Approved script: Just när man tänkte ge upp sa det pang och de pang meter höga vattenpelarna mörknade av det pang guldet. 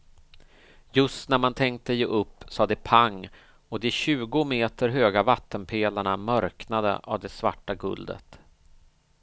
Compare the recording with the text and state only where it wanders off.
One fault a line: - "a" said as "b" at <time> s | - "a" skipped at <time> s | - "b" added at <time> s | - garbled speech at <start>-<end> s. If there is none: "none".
- "pang" said as "tjugo" at 3.9 s
- "pang" said as "svarta" at 7.3 s